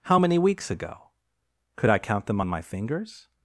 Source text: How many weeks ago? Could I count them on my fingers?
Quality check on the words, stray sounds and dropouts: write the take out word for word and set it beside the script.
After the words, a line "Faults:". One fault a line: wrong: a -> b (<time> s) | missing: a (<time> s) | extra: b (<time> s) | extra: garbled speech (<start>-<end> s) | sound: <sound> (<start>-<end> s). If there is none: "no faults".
How many weeks ago? Could I count them on my fingers?
Faults:
no faults